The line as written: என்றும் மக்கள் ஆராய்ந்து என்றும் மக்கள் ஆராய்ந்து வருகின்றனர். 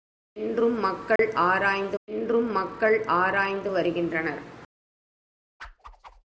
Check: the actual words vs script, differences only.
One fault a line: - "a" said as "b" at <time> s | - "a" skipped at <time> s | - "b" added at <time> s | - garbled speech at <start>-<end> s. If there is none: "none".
none